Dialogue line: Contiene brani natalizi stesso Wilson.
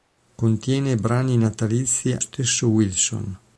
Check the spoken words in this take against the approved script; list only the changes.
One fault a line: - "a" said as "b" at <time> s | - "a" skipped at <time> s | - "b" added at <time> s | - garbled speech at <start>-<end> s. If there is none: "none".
none